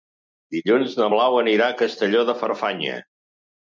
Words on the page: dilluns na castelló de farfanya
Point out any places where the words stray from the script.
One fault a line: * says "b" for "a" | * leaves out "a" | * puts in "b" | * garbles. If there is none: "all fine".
* puts in "blau anirà a"